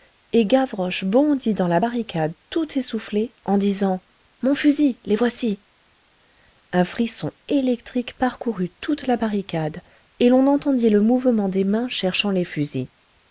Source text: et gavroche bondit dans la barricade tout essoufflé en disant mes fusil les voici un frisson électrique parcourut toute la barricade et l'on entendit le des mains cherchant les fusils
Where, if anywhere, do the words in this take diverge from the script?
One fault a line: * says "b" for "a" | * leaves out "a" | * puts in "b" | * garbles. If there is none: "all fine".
* says "mon" for "mes"
* puts in "mouvement"